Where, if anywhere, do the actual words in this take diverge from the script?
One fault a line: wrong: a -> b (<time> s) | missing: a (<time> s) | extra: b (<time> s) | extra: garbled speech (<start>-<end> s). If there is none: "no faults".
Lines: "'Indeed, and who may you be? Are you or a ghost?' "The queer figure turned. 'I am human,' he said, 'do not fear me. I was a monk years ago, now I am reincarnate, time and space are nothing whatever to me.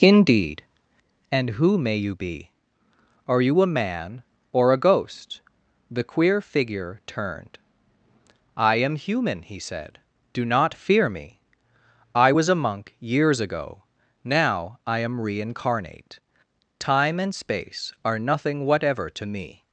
extra: a man (3.6 s)